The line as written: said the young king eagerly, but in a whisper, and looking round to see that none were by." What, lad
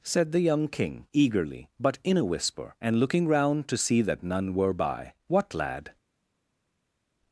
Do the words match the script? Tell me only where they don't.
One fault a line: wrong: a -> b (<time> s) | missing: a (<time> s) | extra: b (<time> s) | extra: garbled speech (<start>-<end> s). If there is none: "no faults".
no faults